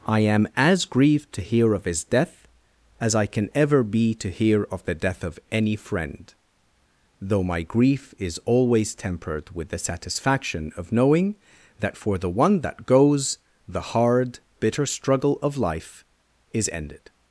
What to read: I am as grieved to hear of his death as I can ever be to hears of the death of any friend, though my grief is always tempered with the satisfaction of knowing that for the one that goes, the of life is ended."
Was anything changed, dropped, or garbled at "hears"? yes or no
yes